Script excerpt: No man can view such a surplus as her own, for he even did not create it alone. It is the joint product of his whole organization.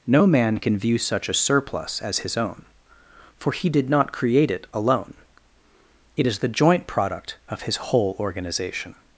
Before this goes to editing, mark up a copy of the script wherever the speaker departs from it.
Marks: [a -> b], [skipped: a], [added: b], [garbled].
No man can view such a surplus as [her -> his] own, for he [skipped: even] did not create it alone. It is the joint product of his whole organization.